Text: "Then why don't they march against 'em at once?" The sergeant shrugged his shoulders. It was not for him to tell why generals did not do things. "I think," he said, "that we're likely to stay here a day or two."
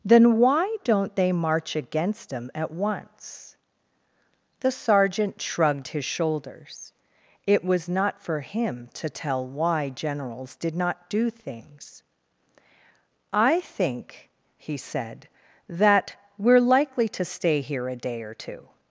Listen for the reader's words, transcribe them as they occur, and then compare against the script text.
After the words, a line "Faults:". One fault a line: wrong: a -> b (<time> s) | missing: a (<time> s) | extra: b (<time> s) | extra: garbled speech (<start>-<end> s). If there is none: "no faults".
"Then why don't they march against 'em at once?" The sergeant shrugged his shoulders. It was not for him to tell why generals did not do things. "I think," he said, "that we're likely to stay here a day or two."
Faults:
no faults